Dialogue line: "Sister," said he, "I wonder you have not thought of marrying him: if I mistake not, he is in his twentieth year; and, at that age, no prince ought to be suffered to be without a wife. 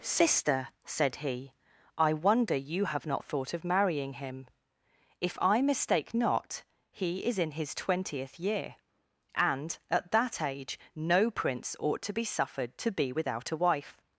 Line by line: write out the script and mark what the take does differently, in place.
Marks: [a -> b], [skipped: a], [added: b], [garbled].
"Sister," said he, "I wonder you have not thought of marrying him: if I mistake not, he is in his twentieth year; and, at that age, no prince ought to be suffered to be without a wife.